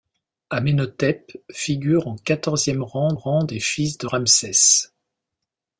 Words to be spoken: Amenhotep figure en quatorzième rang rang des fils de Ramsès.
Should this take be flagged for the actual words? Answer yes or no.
no